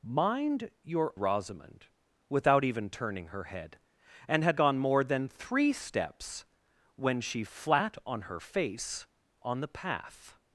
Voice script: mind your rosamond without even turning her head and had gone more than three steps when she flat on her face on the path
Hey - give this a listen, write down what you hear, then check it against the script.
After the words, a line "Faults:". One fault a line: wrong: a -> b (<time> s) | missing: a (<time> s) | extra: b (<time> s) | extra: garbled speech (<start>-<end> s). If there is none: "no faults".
mind your rosamond without even turning her head and had gone more than three steps when she flat on her face on the path
Faults:
no faults